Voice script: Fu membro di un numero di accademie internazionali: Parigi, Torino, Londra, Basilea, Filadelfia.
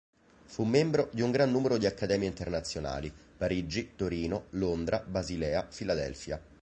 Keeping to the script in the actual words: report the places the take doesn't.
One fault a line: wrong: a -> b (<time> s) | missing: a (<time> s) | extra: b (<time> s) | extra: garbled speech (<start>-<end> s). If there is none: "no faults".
extra: gran (1.3 s)